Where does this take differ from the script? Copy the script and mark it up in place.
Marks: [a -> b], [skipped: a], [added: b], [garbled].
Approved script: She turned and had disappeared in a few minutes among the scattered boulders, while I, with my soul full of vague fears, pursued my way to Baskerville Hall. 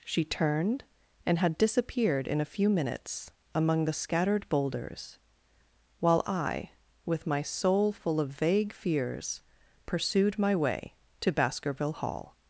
She turned and had disappeared in a few minutes among the scattered boulders, while I, with my soul full of vague fears, pursued my way to Baskerville Hall.